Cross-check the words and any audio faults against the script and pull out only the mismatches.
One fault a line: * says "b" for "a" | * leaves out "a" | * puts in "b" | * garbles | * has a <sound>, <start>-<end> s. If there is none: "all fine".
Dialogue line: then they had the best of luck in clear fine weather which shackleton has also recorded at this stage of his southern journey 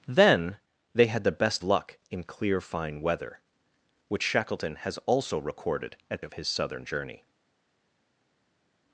* leaves out "of"
* leaves out "this stage"